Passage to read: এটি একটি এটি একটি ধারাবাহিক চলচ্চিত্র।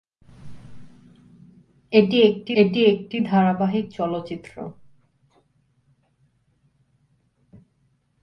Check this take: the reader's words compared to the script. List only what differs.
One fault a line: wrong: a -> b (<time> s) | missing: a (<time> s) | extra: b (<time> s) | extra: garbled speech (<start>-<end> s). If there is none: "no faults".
no faults